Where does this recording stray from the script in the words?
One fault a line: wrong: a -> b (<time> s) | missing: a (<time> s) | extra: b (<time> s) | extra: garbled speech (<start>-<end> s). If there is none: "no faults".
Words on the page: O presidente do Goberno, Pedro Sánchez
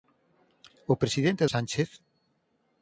missing: do Goberno Pedro (1.4 s)